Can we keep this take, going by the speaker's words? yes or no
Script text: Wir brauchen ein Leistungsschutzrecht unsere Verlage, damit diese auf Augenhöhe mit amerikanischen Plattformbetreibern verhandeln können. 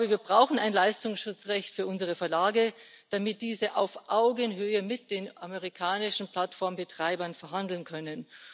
no